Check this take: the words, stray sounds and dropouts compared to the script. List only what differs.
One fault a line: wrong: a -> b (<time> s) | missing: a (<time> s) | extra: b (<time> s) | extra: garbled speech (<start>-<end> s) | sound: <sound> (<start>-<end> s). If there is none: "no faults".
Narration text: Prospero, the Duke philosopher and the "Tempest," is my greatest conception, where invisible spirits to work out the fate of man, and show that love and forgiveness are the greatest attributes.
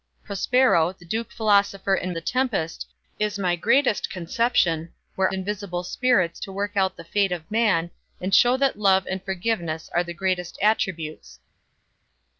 no faults